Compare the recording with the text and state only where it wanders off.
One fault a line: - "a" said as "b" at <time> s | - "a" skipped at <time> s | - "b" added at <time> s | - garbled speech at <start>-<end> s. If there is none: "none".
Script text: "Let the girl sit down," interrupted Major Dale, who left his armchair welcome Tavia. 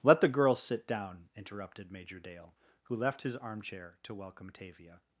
- "to" added at 4.0 s